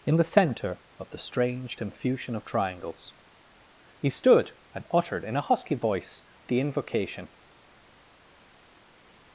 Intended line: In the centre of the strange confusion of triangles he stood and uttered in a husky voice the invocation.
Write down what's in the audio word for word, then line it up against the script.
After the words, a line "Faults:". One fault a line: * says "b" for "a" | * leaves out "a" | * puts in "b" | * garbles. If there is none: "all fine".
In the centre of the strange confusion of triangles he stood and uttered in a husky voice the invocation.
Faults:
all fine